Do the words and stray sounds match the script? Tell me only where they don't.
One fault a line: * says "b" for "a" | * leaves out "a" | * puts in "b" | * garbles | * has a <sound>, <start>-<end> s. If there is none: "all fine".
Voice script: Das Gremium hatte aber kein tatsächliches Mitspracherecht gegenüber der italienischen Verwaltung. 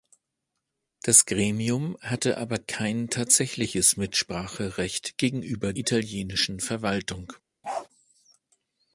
* leaves out "der"
* has a bark, 7.6-7.9 s